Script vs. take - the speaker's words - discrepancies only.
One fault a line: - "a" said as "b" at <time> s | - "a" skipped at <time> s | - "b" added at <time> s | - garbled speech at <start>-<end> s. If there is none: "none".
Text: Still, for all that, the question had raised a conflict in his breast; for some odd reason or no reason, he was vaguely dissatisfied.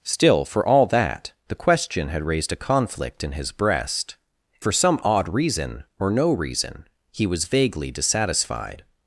none